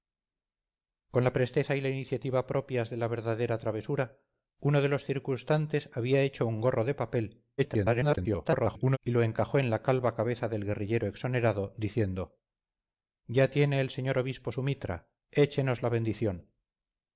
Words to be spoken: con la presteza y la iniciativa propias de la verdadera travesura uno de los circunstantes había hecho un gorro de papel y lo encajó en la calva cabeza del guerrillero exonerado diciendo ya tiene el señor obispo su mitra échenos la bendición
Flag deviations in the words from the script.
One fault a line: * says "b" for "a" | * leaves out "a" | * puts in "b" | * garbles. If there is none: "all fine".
* garbles